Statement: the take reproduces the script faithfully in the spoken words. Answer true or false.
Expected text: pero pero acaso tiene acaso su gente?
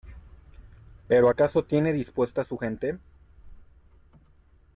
false